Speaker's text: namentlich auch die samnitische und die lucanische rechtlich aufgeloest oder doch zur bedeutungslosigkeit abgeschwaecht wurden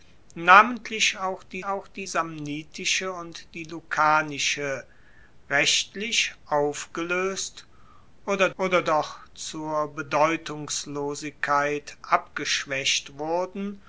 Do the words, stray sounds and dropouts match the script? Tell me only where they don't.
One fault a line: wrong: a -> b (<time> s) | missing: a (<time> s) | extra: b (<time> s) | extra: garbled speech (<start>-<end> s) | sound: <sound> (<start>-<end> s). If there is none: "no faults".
extra: auch die (1.6 s)
extra: oder (8.6 s)